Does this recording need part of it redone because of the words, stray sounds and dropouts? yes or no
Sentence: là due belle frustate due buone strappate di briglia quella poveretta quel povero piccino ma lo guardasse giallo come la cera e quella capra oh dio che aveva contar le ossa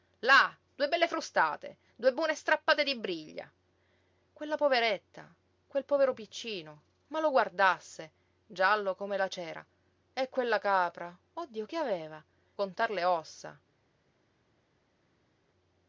no